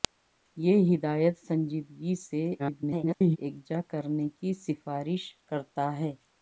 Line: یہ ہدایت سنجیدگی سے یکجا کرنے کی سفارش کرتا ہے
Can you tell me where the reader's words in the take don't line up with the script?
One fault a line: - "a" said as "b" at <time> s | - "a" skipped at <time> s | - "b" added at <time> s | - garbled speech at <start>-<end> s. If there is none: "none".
- garbled speech at 2.6-3.4 s